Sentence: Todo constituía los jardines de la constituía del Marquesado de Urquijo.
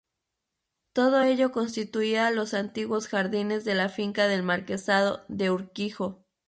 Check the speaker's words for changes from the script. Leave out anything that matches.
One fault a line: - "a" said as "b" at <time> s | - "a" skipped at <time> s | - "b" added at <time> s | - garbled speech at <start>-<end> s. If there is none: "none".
- "ello" added at 1.2 s
- "antiguos" added at 2.5 s
- "constituía" said as "finca" at 3.9 s